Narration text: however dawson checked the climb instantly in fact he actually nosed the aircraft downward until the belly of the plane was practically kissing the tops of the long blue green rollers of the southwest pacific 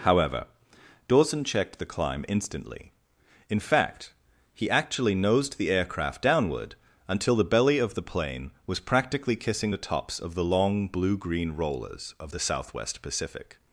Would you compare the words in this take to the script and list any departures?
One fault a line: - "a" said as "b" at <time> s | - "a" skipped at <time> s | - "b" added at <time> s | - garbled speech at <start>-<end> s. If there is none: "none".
none